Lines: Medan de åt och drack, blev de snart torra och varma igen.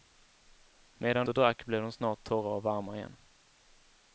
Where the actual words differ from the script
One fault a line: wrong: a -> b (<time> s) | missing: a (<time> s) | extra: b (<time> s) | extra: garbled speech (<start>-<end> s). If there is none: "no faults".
missing: de åt (1.3 s)